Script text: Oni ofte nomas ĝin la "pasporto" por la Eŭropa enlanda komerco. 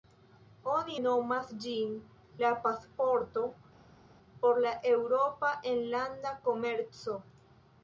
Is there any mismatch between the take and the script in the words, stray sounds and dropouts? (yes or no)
yes